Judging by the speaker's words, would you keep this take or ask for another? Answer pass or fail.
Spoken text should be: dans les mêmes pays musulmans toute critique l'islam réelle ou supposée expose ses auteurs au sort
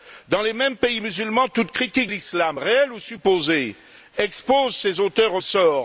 pass